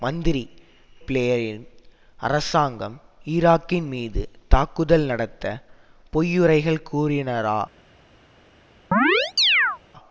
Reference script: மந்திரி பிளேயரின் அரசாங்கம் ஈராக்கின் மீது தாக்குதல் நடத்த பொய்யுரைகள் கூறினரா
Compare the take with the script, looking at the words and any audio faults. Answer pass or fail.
fail